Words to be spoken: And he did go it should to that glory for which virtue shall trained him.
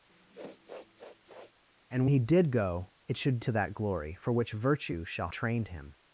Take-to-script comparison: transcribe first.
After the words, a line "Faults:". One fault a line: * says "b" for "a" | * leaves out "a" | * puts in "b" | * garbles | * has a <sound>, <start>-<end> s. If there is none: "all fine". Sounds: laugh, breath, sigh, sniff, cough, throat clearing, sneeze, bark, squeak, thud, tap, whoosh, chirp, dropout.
And he did go it should to that glory for which virtue shall trained him.
Faults:
* has a sniff, 0.1-1.5 s